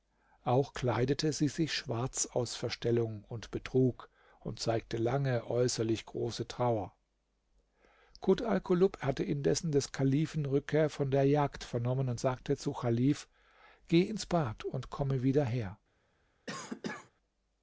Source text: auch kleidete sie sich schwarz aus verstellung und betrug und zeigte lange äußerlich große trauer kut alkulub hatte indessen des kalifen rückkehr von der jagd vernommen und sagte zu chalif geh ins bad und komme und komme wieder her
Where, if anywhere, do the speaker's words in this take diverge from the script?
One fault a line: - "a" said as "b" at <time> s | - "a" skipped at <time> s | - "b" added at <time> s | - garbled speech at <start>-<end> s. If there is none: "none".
- "und komme" skipped at 15.2 s